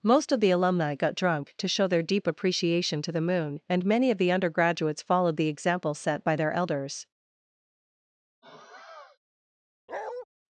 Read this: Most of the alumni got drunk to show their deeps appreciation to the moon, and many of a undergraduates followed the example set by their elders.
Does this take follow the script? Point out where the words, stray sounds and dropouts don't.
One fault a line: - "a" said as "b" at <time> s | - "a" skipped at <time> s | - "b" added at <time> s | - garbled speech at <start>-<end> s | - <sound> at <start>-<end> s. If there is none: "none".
- "deeps" said as "deep" at 2.0 s
- "a" said as "the" at 4.2 s
- sigh at 8.4-9.2 s
- bark at 9.9-10.3 s